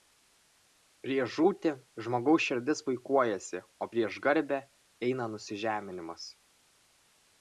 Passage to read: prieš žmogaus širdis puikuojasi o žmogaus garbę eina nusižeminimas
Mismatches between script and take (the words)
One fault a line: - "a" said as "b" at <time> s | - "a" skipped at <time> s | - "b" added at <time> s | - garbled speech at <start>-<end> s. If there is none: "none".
- "žūtį" added at 1.3 s
- "žmogaus" said as "prieš" at 3.9 s